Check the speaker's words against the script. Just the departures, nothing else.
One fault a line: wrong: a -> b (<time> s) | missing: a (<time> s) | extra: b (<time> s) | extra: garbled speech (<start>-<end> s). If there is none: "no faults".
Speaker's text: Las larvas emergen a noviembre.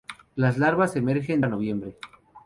no faults